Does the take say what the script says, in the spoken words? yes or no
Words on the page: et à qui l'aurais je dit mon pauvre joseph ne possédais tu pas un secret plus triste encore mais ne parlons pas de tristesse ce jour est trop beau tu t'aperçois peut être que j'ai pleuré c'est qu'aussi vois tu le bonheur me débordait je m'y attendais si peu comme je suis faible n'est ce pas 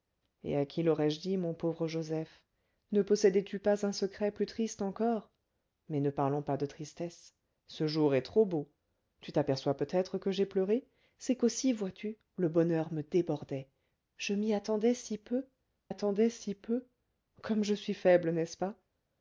no